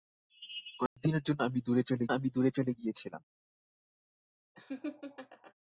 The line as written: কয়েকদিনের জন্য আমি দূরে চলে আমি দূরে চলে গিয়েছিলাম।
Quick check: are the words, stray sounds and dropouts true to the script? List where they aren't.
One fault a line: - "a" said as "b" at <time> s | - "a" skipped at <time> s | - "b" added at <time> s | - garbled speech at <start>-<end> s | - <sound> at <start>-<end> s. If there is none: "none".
- dropout at 0.9-1.0 s
- laugh at 4.5-5.5 s